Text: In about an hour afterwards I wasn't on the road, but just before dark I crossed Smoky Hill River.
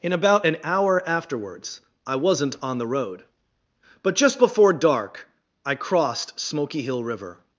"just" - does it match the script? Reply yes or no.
yes